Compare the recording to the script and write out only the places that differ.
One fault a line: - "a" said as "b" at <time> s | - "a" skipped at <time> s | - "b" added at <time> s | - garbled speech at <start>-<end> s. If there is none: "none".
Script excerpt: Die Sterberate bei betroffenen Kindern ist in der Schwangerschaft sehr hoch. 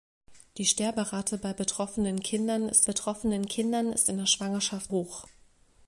- "betroffenen Kindern ist" added at 2.8 s
- "sehr" skipped at 4.9 s